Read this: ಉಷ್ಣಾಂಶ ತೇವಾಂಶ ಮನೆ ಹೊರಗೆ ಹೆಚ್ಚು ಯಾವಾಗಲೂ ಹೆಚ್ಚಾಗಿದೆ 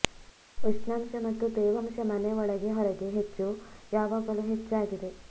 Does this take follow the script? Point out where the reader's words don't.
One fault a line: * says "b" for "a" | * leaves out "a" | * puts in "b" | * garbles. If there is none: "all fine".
* puts in "ಮತ್ತು"
* puts in "ಒಳಗೆ"